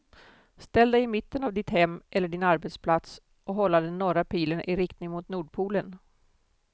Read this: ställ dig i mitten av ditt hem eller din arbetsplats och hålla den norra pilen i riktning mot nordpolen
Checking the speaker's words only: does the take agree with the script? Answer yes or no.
yes